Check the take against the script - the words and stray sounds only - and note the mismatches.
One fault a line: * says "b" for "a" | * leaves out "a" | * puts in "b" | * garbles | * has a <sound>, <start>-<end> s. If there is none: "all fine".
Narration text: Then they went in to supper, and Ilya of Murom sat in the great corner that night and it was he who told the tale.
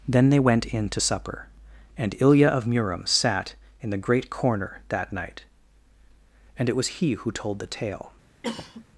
* has a cough, 8.4-8.8 s